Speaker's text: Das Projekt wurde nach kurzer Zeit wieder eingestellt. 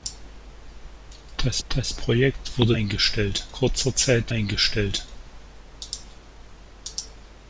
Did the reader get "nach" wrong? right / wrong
wrong